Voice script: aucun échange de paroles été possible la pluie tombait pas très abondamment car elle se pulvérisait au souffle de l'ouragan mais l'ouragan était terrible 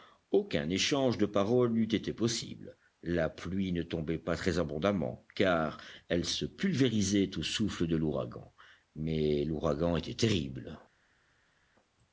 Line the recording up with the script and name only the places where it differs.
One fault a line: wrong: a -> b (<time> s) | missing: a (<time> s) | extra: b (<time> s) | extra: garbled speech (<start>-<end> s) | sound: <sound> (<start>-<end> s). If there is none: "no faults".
extra: n'eût (1.7 s)
extra: ne (3.7 s)